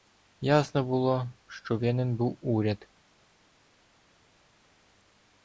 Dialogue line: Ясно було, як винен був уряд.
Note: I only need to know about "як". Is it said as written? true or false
false